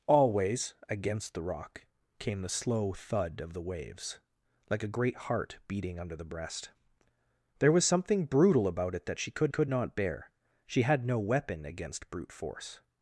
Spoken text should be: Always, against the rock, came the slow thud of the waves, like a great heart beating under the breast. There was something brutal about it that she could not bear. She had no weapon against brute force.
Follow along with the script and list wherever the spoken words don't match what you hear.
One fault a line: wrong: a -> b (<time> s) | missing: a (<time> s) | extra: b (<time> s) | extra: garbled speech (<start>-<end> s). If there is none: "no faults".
extra: could (9.5 s)